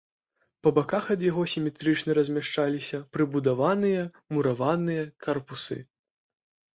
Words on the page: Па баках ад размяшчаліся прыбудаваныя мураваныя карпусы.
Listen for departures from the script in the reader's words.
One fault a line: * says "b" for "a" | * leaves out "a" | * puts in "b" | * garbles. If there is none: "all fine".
* puts in "яго сіметрычна"